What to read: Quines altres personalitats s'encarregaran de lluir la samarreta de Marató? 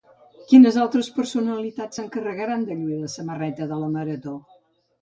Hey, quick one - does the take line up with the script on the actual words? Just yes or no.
no